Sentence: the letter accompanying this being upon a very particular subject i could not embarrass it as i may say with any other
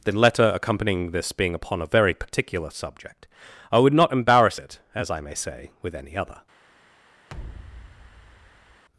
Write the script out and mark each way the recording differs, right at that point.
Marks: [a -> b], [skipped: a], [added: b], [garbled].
the letter accompanying this being upon a very particular subject i [could -> would] not embarrass it as i may say with any other